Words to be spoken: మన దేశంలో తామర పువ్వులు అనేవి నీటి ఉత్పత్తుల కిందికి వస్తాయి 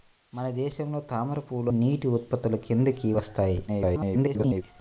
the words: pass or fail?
fail